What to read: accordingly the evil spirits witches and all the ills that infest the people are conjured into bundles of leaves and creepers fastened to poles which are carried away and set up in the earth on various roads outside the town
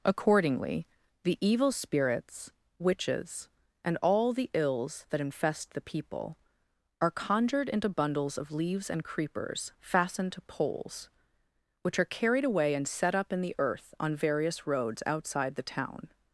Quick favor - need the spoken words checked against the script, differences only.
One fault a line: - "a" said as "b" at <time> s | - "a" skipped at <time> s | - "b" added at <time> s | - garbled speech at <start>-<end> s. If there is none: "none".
none